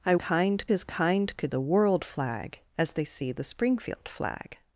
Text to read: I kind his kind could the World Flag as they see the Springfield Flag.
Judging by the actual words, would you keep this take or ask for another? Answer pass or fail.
pass